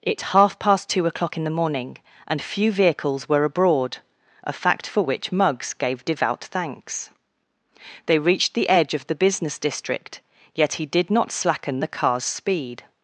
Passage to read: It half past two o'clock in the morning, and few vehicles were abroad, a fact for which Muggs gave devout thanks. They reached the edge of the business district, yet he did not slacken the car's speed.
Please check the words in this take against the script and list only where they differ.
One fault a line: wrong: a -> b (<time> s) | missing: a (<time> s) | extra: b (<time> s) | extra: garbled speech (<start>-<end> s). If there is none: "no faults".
no faults